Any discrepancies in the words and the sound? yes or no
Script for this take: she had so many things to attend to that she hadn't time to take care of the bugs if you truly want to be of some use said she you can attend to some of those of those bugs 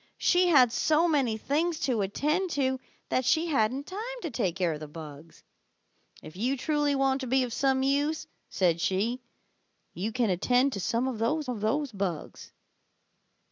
no